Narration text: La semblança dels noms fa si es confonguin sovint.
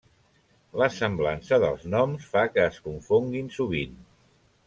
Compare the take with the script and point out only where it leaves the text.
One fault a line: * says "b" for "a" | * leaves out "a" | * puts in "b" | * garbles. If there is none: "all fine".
* says "que" for "si"